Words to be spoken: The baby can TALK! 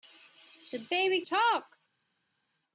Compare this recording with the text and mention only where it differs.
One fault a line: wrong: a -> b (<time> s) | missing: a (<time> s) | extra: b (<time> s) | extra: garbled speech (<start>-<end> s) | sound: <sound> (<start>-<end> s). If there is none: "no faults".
missing: can (1.2 s)